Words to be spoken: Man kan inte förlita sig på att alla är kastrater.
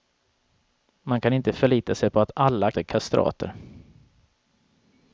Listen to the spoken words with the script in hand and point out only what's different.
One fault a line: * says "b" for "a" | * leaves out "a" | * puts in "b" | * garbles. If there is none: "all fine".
all fine